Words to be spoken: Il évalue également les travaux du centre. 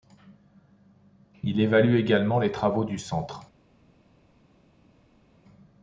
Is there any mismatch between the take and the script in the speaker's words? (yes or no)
no